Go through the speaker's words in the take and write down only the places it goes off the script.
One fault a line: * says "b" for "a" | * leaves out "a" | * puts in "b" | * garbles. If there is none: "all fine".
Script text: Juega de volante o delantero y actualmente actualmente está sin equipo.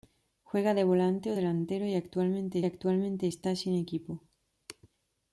all fine